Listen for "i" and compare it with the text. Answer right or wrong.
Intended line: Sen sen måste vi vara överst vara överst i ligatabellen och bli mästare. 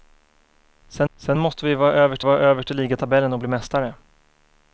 right